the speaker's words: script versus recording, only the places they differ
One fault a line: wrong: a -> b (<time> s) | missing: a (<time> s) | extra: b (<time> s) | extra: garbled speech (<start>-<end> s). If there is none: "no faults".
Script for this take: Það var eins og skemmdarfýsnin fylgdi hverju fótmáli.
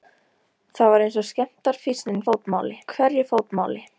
wrong: fylgdi -> fótmáli (2.3 s)